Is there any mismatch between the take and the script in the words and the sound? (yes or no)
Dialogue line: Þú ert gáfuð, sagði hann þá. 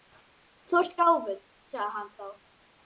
no